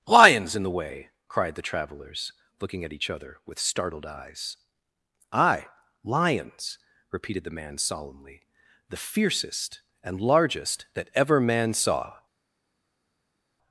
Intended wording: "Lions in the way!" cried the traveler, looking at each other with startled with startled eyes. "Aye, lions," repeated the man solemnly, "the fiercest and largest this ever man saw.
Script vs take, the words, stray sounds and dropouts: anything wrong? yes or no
yes